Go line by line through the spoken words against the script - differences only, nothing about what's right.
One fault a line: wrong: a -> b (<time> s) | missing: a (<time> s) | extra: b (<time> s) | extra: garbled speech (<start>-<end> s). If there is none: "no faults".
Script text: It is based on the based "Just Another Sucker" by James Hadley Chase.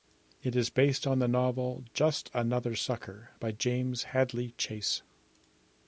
wrong: based -> novel (1.3 s)